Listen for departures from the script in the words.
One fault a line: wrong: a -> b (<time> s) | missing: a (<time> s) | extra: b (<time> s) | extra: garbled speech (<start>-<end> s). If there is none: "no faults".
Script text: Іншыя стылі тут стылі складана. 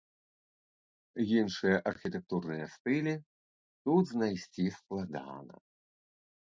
extra: архітэктурныя (1.9 s)
wrong: стылі -> знайсці (4.2 s)